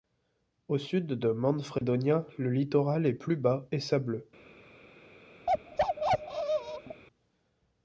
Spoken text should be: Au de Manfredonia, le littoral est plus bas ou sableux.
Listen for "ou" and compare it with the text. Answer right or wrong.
wrong